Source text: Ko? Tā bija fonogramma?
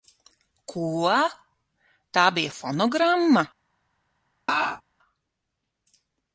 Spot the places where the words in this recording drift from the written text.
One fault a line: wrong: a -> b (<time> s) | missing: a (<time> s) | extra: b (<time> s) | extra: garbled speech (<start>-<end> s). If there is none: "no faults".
no faults